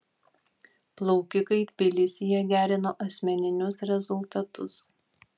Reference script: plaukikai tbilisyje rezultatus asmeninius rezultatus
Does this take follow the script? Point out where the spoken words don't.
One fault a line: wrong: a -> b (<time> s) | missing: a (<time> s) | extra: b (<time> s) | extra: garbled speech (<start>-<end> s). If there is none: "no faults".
wrong: rezultatus -> gerino (2.5 s)